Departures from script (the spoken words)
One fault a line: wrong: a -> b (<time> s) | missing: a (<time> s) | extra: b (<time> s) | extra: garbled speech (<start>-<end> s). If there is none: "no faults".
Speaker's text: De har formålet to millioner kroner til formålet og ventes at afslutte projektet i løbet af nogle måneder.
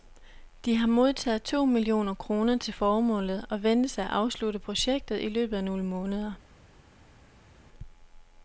wrong: formålet -> modtaget (0.9 s)